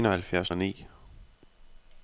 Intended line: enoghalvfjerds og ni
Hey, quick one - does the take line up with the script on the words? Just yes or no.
yes